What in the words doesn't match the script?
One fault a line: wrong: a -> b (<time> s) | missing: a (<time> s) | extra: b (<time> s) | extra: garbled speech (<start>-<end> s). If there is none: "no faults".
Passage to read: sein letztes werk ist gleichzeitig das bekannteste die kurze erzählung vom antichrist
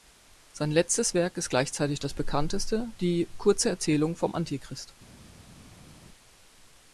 no faults